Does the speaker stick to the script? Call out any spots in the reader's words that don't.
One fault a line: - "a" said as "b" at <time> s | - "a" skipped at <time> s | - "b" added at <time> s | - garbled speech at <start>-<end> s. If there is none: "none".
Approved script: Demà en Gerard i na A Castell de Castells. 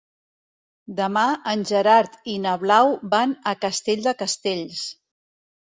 - "Blau van" added at 2.6 s